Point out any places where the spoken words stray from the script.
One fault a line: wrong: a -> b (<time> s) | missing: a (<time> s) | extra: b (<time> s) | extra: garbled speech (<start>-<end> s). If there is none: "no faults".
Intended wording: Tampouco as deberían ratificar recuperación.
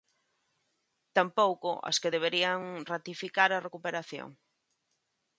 extra: que (2.0 s)
extra: a (3.5 s)